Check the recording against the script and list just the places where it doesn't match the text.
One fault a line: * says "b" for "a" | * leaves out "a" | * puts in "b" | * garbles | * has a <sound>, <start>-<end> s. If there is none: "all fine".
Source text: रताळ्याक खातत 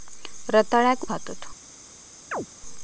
* has a chirp, 2.3-2.5 s